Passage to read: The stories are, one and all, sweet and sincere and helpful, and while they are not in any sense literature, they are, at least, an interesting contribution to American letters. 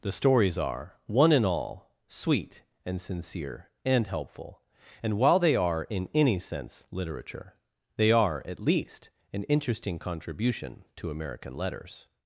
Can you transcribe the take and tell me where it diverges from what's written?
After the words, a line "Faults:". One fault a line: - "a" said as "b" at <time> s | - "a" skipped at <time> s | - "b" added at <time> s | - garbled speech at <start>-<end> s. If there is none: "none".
The stories are, one and all, sweet and sincere and helpful, and while they are in any sense literature, they are, at least, an interesting contribution to American letters.
Faults:
- "not" skipped at 5.8 s